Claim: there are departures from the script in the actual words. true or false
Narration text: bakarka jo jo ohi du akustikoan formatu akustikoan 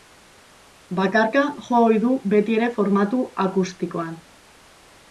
true